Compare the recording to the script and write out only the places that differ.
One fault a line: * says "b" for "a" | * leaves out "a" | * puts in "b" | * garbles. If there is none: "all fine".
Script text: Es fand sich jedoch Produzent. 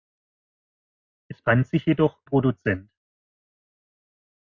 all fine